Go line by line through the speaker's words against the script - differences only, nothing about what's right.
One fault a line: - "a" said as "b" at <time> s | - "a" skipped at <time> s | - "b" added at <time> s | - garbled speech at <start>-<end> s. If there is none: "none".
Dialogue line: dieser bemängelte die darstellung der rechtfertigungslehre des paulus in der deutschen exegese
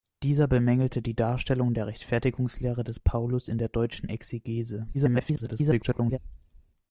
- garbled speech at 4.9-6.2 s